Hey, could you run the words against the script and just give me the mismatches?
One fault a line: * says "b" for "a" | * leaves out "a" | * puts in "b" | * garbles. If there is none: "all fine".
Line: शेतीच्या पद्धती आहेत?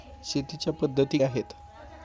all fine